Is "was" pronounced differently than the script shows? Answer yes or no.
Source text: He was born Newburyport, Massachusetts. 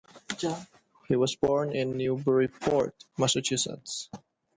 no